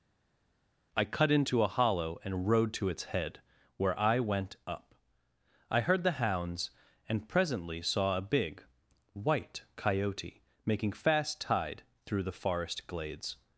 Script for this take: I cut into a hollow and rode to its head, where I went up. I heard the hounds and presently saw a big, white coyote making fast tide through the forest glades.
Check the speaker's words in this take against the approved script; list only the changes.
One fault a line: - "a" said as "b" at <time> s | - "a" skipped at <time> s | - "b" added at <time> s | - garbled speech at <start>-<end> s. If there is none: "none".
none